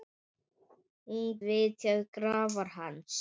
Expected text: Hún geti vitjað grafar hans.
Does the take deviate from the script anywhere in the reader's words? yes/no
yes